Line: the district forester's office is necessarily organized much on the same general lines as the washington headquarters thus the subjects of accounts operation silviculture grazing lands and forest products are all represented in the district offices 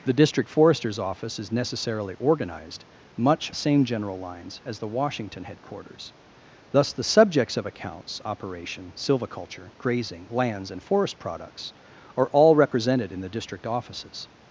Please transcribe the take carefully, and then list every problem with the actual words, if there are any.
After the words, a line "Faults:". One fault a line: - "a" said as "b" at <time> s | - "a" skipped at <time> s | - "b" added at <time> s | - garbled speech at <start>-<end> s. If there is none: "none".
the district forester's office is necessarily organized much the same general lines as the washington headquarters thus the subjects of accounts operation silviculture grazing lands and forest products are all represented in the district offices
Faults:
- "on" skipped at 3.5 s